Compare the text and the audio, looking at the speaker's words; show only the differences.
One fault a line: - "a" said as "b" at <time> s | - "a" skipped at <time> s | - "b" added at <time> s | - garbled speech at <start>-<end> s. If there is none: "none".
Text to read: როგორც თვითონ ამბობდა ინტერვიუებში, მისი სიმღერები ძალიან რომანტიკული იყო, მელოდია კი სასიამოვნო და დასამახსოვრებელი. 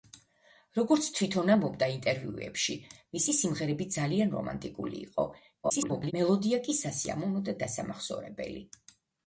- garbled speech at 5.6-6.1 s